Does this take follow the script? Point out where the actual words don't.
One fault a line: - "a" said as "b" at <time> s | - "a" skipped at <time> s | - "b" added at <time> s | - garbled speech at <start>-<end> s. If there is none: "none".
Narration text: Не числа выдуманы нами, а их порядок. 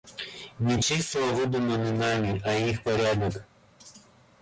none